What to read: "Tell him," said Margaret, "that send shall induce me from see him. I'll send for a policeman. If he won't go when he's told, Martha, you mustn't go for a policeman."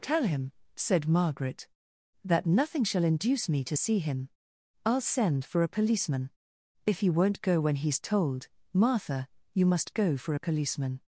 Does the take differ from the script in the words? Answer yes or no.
yes